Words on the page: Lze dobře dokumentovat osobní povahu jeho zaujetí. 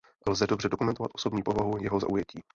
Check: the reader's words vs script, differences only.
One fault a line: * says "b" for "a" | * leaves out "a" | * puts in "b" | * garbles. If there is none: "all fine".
all fine